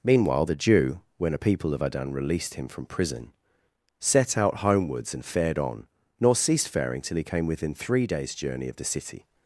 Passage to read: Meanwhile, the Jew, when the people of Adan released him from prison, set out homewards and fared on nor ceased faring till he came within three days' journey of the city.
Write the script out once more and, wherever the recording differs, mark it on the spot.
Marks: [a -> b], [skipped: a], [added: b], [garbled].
Meanwhile, the Jew, when [the -> a] people of Adan released him from prison, set out homewards and fared on nor ceased faring till he came within three days' journey of the city.